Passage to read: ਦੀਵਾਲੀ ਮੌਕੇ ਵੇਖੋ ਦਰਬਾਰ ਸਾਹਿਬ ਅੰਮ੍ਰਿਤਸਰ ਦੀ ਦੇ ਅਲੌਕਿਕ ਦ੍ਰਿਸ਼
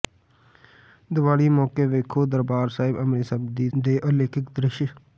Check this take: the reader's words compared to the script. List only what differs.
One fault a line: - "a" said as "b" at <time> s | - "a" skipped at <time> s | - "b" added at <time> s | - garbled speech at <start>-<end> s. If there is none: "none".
none